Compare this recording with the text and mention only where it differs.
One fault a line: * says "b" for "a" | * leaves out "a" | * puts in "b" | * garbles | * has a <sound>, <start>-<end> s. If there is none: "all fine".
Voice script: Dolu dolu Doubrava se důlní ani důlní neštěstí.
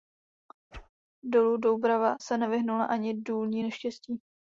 * has a whoosh, 0.7-0.9 s
* leaves out "dolu"
* says "nevyhnula" for "důlní"